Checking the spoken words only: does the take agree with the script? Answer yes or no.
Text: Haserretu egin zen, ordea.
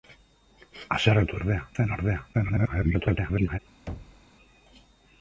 no